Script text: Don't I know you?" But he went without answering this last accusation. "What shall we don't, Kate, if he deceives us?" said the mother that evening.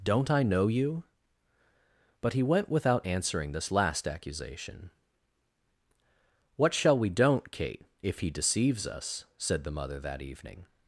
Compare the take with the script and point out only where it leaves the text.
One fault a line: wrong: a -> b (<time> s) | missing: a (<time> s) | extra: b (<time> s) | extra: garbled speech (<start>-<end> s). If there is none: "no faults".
no faults